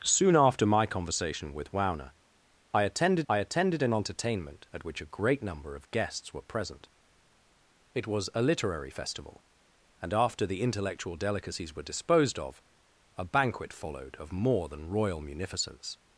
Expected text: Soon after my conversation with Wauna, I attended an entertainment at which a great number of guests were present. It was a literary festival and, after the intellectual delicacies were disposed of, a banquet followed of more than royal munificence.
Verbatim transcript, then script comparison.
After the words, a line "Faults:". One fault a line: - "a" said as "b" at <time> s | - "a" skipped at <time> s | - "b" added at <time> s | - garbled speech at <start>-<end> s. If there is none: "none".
Soon after my conversation with Wauna, I attended I attended an entertainment at which a great number of guests were present. It was a literary festival and, after the intellectual delicacies were disposed of, a banquet followed of more than royal munificence.
Faults:
- "I attended" added at 3.3 s